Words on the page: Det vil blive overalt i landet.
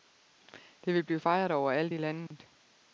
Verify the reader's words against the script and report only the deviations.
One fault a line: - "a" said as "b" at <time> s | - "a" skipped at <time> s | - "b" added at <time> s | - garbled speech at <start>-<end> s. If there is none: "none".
- "fejret" added at 1.2 s